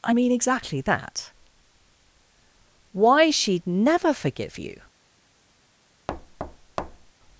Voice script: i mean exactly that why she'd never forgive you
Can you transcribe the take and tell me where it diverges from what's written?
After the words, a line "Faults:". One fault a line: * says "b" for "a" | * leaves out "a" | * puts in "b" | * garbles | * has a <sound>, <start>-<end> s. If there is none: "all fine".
i mean exactly that why she'd never forgive you
Faults:
* has a thud, 6.1-7.1 s